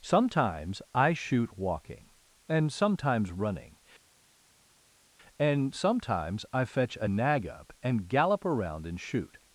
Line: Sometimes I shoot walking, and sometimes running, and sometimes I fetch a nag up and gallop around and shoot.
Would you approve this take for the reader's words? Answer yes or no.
yes